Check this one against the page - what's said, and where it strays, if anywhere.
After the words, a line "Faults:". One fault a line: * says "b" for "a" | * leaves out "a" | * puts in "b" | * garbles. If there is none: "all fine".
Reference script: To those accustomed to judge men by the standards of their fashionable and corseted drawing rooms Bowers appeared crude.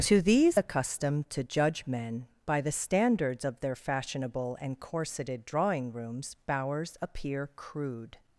To these accustomed to judge men by the standards of their fashionable and corseted drawing rooms Bowers appear crude.
Faults:
* says "these" for "those"
* says "appear" for "appeared"